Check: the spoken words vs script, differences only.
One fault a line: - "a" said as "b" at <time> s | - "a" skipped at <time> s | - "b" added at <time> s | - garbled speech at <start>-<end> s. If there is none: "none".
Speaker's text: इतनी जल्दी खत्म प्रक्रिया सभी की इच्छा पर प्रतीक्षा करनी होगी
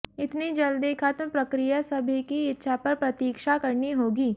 none